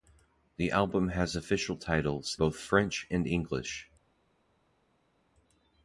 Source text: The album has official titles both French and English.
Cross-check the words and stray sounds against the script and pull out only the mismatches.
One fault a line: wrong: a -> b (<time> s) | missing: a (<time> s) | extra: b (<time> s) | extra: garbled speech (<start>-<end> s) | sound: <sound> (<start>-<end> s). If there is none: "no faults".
no faults